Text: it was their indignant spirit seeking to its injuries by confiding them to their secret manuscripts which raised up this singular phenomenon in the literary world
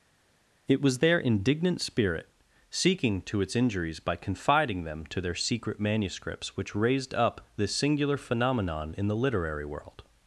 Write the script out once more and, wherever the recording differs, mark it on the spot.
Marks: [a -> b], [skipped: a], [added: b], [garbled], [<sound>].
it was their indignant spirit seeking to its injuries by confiding them to their secret manuscripts which raised up this singular phenomenon in the literary world